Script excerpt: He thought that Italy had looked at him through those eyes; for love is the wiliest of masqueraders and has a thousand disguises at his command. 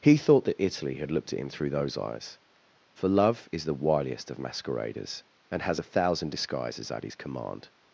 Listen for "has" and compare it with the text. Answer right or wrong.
right